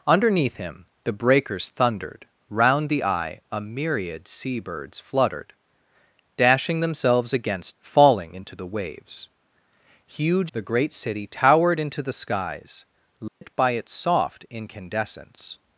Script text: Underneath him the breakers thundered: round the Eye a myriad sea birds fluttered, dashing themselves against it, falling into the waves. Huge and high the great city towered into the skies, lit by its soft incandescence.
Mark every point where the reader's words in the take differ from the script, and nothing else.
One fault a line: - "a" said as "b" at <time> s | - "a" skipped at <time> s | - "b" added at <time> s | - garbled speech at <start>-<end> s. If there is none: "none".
- "it" skipped at 7.8 s
- "and high" skipped at 10.5 s